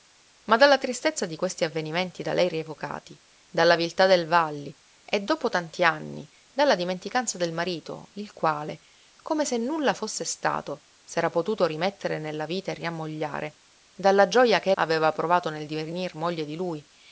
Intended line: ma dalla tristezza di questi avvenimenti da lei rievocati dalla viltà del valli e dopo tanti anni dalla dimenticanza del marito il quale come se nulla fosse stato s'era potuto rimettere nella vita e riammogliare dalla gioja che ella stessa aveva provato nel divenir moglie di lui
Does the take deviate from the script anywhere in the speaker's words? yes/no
yes